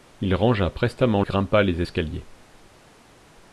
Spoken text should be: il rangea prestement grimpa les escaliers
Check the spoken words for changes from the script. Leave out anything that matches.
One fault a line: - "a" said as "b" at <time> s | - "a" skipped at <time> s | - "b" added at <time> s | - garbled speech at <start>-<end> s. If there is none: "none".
none